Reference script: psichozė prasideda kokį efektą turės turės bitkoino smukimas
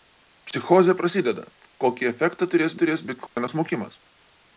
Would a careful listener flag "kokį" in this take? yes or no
no